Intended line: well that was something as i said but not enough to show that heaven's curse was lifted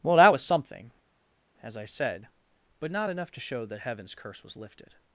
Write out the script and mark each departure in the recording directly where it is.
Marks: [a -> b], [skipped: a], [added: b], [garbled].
well that was something as i said but not enough to show that heaven's curse was lifted